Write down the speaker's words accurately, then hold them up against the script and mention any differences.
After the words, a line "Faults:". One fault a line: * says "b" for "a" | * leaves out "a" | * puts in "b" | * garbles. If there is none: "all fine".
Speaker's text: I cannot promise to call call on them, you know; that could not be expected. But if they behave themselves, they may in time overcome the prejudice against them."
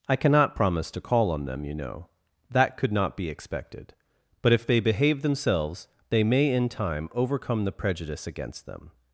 I cannot promise to call on them, you know; that could not be expected. But if they behave themselves, they may in time overcome the prejudice against them."
Faults:
* leaves out "call"